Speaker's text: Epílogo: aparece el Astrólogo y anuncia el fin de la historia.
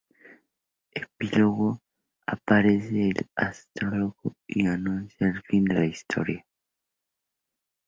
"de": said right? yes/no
yes